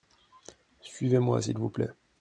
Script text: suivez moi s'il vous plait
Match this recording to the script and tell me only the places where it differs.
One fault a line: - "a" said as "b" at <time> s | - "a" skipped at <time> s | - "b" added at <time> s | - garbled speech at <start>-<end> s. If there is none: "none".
none